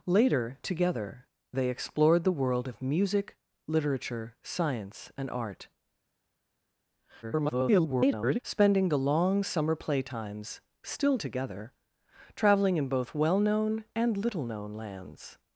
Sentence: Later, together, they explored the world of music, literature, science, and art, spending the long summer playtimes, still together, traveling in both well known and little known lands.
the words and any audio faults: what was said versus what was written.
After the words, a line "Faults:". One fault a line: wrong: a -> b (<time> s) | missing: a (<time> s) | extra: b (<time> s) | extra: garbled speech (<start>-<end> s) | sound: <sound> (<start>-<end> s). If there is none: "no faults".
Later, together, they explored the world of music, literature, science, and art, [garbled] spending the long summer playtimes, still together, traveling in both well known and little known lands.
Faults:
extra: garbled speech (7.2-8.4 s)